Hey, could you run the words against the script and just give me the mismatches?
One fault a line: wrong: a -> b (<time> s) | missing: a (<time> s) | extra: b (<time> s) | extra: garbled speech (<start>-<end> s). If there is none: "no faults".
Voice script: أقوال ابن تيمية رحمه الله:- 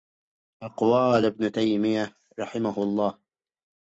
no faults